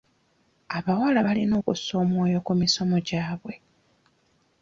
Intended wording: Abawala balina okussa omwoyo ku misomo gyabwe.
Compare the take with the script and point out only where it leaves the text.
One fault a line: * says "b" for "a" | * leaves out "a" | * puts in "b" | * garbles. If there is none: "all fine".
all fine